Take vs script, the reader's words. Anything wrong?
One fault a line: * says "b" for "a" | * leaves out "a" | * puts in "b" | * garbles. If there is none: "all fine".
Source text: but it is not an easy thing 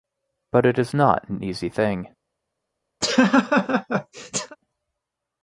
all fine